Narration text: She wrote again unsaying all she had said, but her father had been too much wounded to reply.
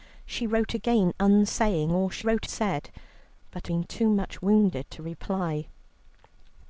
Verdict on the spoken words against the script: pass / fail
fail